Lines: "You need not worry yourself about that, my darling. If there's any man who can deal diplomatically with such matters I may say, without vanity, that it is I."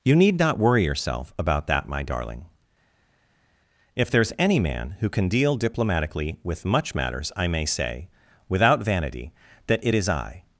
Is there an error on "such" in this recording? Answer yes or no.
yes